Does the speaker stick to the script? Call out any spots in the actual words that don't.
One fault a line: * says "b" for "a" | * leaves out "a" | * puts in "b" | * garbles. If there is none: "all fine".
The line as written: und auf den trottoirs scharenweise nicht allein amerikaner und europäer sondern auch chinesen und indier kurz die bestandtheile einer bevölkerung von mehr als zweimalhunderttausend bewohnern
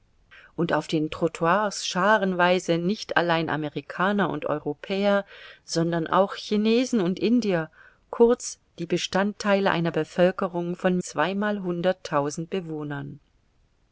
* leaves out "mehr als"